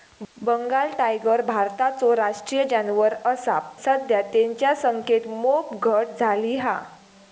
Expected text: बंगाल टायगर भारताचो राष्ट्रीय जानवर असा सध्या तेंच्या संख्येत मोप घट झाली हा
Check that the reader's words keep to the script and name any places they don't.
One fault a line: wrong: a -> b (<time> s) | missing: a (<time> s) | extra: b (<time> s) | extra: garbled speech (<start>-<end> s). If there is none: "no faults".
no faults